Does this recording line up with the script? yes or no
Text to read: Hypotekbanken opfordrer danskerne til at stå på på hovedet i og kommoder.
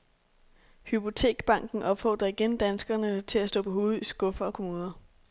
no